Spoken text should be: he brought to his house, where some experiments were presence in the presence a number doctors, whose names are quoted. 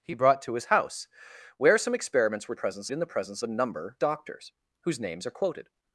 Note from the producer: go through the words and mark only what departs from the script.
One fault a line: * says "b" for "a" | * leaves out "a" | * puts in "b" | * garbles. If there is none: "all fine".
all fine